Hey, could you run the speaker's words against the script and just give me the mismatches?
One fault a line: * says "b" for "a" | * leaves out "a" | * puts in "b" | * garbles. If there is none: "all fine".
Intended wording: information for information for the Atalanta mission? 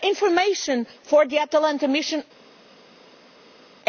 * leaves out "information for"